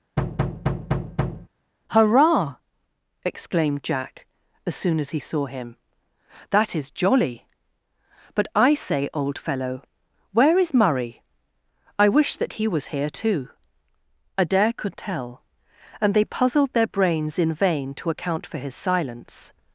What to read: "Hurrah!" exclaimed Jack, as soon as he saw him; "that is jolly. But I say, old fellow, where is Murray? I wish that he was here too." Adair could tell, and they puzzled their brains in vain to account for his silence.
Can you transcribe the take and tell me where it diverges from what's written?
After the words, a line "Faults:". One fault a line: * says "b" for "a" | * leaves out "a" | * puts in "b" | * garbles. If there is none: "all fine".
"Hurrah!" exclaimed Jack, as soon as he saw him; "that is jolly. But I say, old fellow, where is Murray? I wish that he was here too." Adair could tell, and they puzzled their brains in vain to account for his silence.
Faults:
all fine